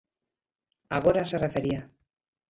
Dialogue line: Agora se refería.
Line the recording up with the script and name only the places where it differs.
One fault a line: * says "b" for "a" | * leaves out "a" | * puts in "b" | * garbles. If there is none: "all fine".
all fine